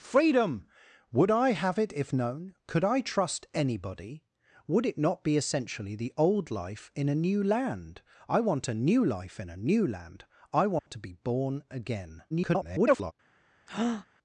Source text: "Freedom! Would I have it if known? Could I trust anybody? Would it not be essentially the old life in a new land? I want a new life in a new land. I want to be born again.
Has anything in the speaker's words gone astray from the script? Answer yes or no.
yes